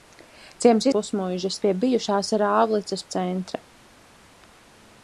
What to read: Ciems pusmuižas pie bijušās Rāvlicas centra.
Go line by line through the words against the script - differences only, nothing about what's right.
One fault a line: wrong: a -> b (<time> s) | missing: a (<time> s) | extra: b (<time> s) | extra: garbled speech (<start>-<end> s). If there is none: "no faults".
no faults